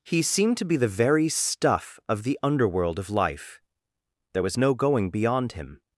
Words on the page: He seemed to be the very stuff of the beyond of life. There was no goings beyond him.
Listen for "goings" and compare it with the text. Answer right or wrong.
wrong